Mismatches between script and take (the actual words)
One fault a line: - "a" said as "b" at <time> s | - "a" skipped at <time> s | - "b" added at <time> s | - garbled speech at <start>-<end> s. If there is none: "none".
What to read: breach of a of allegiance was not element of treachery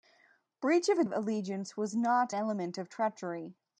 none